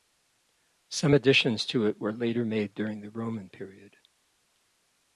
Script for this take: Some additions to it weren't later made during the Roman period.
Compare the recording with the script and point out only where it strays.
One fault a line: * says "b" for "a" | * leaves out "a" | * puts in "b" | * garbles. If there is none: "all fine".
* says "were" for "weren't"